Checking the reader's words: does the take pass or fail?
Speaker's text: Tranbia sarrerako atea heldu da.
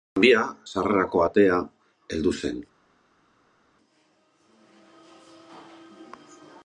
fail